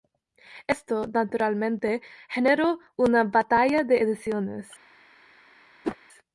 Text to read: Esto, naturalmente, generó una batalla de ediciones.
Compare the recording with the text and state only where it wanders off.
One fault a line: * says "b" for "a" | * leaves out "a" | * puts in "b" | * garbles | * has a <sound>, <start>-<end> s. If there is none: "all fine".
* has a whoosh, 5.8-6.0 s